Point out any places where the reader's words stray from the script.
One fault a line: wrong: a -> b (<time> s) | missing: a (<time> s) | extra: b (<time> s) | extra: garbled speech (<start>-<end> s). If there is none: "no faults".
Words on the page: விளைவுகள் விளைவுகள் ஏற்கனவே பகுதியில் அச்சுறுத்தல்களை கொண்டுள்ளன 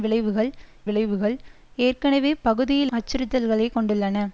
no faults